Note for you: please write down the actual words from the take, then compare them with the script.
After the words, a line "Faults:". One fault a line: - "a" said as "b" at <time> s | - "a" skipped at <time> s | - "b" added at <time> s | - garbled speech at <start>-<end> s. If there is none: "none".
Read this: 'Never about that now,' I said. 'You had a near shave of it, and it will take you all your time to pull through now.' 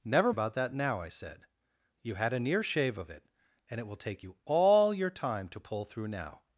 'Never about that now,' I said. 'You had a near shave of it, and it will take you all your time to pull through now.'
Faults:
none